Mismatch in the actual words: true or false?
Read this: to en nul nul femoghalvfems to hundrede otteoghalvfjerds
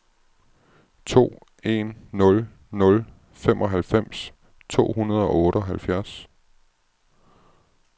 true